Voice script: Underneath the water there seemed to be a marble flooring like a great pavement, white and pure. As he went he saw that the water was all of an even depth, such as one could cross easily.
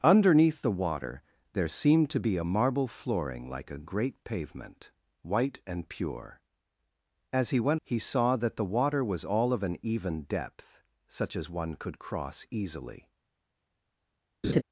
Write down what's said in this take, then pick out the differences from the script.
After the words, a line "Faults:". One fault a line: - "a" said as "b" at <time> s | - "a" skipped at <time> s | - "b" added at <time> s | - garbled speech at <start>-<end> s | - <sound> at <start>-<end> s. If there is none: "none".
Underneath the water there seemed to be a marble flooring like a great pavement, white and pure. As he went he saw that the water was all of an even depth, such as one could cross easily.
Faults:
- laugh at 14.4-14.6 s